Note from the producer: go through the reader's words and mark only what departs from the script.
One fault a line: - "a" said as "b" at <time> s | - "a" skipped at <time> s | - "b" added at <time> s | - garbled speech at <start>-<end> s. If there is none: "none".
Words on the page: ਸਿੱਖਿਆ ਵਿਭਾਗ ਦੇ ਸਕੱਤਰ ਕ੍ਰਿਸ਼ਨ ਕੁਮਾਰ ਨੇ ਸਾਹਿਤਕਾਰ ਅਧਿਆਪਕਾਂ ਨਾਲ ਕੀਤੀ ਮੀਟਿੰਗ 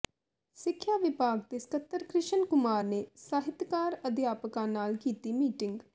none